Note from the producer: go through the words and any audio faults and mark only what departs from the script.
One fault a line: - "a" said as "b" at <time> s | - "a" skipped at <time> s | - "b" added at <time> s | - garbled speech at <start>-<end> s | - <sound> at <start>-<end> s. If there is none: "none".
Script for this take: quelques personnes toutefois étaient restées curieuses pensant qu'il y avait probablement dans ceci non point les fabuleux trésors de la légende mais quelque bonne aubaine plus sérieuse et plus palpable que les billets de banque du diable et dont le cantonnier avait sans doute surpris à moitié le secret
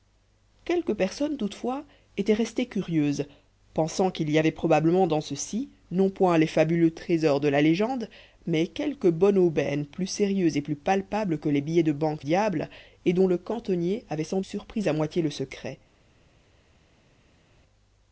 - "du" skipped at 12.3 s
- "doute" skipped at 14.4 s